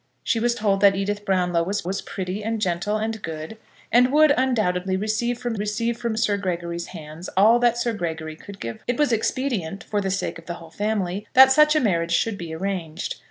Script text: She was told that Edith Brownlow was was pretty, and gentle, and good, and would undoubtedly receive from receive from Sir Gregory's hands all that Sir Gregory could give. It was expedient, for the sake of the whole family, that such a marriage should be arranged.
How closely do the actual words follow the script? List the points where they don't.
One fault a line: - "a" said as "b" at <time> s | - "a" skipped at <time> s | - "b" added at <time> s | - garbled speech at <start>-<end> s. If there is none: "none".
none